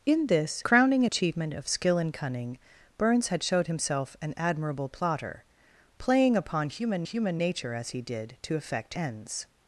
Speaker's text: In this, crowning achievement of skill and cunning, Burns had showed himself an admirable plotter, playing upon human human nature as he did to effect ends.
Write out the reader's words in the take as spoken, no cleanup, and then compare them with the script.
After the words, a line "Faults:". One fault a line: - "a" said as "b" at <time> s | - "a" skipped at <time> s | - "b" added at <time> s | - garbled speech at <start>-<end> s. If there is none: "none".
In this, crowning achievement of skill and cunning, Burns had showed himself an admirable plotter, playing upon human human nature as he did to effect ends.
Faults:
none